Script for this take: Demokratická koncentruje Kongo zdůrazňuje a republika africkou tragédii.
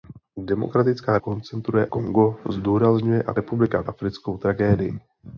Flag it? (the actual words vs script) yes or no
no